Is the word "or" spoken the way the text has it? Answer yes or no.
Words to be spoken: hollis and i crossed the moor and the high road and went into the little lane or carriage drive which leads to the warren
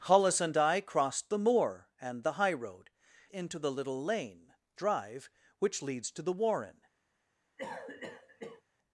no